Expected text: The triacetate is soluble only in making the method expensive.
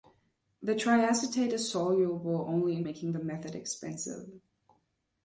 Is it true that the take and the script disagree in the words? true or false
false